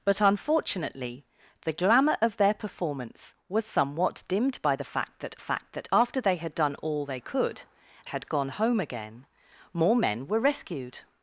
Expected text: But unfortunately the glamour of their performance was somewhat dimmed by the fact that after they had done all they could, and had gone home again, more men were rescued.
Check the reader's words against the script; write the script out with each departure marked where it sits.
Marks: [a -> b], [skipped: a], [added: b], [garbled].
But unfortunately the glamour of their performance was somewhat dimmed by the fact that [added: fact that] after they had done all they could, [skipped: and] had gone home again, more men were rescued.